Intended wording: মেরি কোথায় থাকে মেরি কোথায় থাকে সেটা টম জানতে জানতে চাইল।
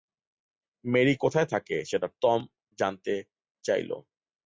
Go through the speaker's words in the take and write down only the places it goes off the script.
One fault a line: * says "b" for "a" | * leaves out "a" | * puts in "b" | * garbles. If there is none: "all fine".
* leaves out "মেরি কোথায় থাকে"
* leaves out "জানতে"